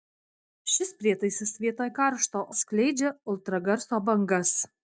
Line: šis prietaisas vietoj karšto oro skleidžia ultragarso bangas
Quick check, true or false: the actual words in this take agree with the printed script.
false